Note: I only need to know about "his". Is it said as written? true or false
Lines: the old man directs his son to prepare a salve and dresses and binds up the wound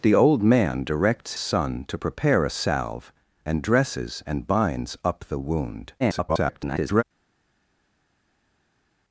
false